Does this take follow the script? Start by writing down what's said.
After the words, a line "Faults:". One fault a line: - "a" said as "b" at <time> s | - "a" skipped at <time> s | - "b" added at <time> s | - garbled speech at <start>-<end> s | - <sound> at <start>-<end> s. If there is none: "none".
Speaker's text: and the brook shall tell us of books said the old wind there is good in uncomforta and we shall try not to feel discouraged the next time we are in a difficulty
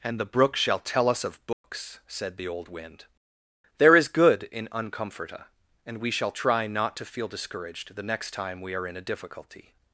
and the brook shall tell us of books said the old wind there is good in uncomforta and we shall try not to feel discouraged the next time we are in a difficulty
Faults:
- dropout at 1.5-1.6 s